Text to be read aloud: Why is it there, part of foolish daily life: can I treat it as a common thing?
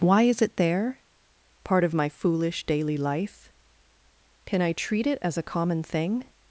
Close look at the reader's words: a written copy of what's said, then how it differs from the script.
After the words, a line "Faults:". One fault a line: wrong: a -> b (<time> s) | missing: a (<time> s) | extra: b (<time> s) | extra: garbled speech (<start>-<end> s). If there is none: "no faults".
Why is it there, part of my foolish daily life: can I treat it as a common thing?
Faults:
extra: my (1.9 s)